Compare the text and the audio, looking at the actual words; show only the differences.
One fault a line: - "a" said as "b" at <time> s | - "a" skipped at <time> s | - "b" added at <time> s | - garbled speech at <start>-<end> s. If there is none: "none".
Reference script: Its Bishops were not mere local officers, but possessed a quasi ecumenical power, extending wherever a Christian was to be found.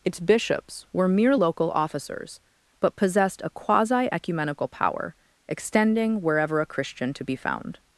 - "not" skipped at 1.1 s
- "was" skipped at 7.1 s